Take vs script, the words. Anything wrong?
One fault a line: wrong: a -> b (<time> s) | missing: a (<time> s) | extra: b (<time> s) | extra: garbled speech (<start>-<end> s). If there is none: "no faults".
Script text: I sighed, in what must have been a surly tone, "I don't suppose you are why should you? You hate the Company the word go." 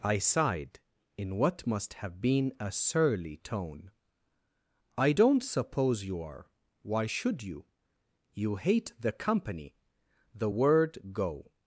no faults